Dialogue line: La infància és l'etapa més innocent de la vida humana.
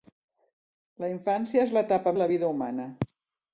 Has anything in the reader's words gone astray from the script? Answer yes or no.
yes